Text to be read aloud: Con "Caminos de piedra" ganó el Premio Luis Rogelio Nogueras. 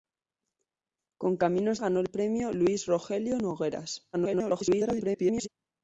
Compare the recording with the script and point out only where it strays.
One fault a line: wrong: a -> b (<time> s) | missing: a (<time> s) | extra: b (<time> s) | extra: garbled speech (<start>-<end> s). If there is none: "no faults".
missing: de piedra (1.8 s)
extra: garbled speech (4.1-5.5 s)